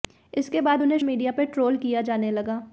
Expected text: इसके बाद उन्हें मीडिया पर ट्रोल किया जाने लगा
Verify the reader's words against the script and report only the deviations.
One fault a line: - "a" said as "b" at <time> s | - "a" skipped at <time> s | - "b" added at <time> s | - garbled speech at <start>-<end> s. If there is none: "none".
none